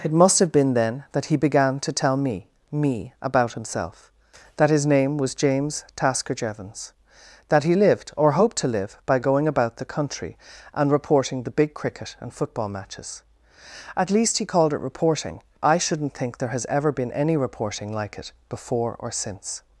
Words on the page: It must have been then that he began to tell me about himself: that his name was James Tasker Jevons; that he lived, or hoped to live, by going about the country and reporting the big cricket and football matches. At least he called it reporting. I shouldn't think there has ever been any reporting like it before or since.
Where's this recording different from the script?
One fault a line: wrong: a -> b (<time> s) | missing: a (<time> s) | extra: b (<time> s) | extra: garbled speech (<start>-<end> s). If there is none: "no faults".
extra: me (2.7 s)